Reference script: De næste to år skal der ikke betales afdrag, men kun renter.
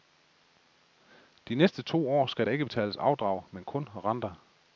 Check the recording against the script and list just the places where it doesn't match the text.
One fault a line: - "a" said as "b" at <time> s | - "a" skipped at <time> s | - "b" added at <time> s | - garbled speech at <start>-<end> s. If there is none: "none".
none